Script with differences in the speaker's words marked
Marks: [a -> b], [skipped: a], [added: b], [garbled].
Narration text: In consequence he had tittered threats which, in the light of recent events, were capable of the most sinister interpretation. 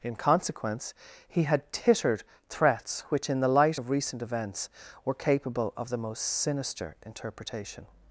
In consequence he had tittered threats which, in the light of recent events, were capable of the most sinister interpretation.